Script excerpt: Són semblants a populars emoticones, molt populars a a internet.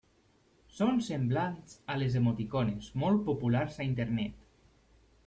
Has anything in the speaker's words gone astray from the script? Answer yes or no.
yes